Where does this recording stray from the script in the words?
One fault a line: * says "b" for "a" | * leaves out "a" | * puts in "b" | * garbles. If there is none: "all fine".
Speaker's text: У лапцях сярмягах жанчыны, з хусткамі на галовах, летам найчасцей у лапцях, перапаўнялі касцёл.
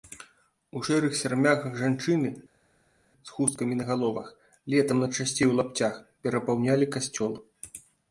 * says "шэрых" for "лапцях"